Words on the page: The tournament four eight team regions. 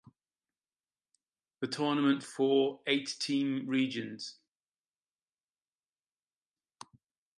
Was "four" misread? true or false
false